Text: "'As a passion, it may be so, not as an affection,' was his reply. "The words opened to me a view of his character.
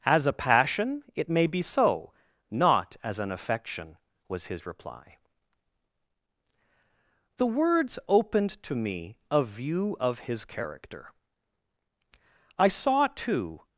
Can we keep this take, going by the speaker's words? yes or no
no